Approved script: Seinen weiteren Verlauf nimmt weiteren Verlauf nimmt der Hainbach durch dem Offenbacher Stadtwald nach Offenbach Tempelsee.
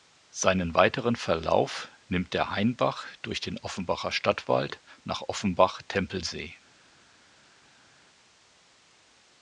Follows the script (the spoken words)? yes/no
no